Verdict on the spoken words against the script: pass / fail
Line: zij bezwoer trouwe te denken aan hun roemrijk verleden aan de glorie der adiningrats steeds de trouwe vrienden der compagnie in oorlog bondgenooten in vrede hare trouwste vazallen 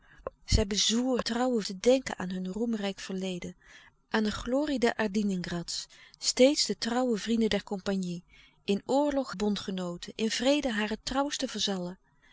pass